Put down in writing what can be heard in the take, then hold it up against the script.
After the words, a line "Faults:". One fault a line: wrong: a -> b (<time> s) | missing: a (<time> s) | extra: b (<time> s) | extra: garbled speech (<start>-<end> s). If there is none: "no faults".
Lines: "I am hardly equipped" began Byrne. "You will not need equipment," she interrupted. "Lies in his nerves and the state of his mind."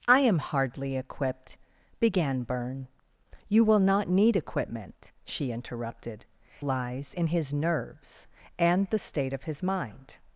"I am hardly equipped" began Byrne. "You will not need equipment," she interrupted. "Lies in his nerves and the state of his mind."
Faults:
no faults